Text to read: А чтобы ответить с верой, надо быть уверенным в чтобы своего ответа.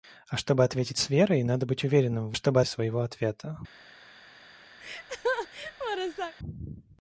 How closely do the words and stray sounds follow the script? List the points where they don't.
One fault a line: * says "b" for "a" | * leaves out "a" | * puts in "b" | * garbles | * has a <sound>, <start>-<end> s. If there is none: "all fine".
* has a laugh, 4.8-6.3 s